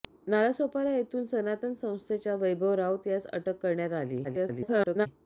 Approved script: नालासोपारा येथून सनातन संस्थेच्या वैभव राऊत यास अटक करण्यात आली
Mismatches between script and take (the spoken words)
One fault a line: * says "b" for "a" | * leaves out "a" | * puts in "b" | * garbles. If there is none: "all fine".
* garbles